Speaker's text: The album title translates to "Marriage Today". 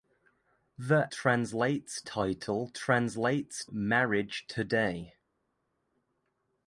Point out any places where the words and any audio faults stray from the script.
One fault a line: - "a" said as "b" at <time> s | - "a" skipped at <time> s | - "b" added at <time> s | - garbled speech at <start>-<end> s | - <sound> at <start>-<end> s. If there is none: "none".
- "album" said as "translates" at 1.1 s
- "to" skipped at 3.6 s